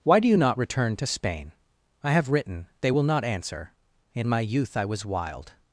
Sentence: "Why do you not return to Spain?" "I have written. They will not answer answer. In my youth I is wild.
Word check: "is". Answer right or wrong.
wrong